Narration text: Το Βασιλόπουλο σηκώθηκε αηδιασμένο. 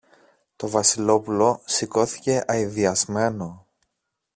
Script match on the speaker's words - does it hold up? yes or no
yes